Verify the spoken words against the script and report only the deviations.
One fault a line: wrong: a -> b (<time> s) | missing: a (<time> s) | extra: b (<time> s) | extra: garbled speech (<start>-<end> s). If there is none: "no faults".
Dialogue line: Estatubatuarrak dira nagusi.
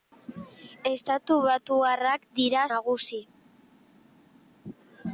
no faults